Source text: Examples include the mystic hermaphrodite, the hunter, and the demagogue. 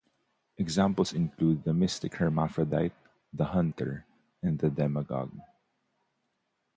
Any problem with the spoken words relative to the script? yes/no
no